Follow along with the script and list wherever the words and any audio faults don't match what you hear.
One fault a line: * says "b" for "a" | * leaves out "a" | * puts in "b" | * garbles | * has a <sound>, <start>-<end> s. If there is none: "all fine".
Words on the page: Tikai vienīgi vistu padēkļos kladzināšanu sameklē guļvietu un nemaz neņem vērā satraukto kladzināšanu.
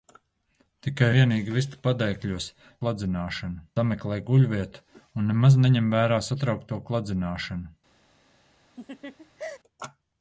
* has a laugh, 8.8-9.6 s